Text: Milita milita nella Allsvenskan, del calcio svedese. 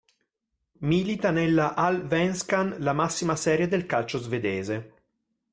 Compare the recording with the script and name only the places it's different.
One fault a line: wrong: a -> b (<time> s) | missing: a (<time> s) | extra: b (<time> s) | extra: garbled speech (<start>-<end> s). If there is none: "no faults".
missing: milita (1.3 s)
extra: la massima serie (2.8 s)